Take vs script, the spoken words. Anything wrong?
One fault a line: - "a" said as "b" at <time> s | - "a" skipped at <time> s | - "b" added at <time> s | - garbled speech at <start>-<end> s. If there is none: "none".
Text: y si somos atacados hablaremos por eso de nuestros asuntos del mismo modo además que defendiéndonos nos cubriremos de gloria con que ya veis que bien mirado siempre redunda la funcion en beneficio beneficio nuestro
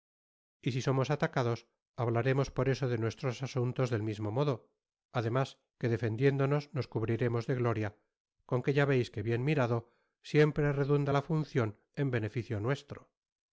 - "beneficio" skipped at 12.6 s